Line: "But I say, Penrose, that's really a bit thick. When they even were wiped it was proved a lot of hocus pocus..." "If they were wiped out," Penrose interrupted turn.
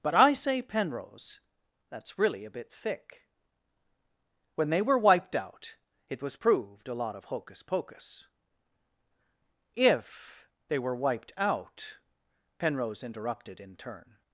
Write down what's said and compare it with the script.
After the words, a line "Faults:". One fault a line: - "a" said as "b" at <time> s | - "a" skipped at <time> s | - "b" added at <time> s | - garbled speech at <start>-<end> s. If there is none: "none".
"But I say, Penrose, that's really a bit thick. When they were wiped out it was proved a lot of hocus pocus..." "If they were wiped out," Penrose interrupted in turn.
Faults:
- "even" skipped at 4.8 s
- "out" added at 5.3 s
- "in" added at 13.6 s